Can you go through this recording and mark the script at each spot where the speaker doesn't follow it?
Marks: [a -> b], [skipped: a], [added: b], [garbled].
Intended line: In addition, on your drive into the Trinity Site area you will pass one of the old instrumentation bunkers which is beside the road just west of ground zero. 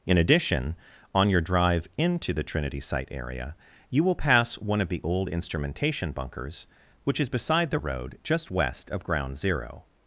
In addition, on your drive into the Trinity Site area you will pass one of the old instrumentation bunkers which is beside the road just west of ground zero.